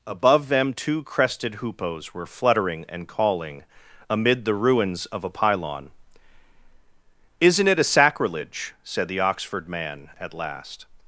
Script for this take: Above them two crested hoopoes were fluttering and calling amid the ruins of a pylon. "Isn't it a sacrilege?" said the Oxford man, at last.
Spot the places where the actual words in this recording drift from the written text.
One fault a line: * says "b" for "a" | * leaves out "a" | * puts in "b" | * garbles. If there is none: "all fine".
all fine